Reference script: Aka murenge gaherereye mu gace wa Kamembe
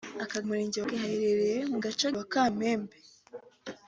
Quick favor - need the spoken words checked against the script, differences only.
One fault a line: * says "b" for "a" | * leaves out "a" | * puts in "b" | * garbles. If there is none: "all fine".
all fine